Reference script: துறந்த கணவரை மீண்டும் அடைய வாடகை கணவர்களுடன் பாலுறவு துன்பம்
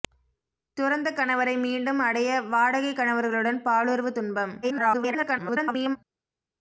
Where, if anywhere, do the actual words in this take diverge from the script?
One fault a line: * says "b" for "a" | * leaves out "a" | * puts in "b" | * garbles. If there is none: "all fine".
* garbles